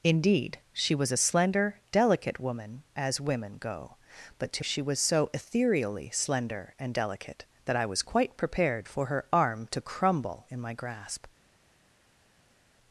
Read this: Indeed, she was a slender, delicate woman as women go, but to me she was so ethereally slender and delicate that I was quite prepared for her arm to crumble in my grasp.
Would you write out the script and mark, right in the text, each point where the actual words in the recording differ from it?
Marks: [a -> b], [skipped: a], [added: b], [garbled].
Indeed, she was a slender, delicate woman as women go, but to [skipped: me] she was so ethereally slender and delicate that I was quite prepared for her arm to crumble in my grasp.